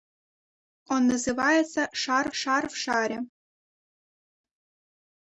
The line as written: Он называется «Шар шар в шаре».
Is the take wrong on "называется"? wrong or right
right